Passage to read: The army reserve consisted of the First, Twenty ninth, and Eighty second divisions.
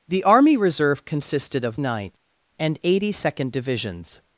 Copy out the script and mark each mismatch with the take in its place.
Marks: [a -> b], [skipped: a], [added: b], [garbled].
The army reserve consisted of [skipped: the First, Twenty] ninth, and Eighty second divisions.